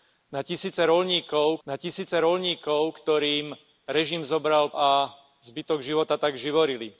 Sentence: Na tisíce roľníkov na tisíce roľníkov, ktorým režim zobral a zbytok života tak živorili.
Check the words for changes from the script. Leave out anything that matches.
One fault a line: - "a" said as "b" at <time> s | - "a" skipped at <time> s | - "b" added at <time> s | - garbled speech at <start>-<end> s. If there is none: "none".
none